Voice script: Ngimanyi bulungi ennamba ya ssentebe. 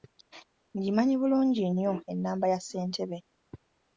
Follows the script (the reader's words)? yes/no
no